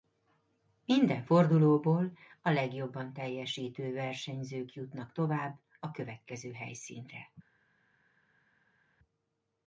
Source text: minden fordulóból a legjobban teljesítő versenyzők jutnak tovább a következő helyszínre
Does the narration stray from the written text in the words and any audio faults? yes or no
no